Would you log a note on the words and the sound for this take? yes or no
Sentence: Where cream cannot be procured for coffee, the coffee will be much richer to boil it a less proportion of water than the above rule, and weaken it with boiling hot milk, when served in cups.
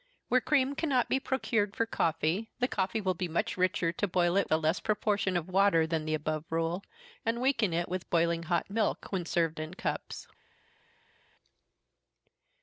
no